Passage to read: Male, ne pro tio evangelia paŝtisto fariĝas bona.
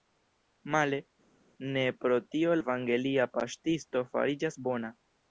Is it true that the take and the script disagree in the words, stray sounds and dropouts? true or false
false